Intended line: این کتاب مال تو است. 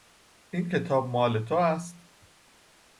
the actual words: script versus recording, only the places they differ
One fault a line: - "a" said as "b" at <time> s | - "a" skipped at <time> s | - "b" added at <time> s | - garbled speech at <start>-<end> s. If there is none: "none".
none